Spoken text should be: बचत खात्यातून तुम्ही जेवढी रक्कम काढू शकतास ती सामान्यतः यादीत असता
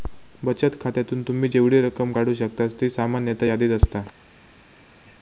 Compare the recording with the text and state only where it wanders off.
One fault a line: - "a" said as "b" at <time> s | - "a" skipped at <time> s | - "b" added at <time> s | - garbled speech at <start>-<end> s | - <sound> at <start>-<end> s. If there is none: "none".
none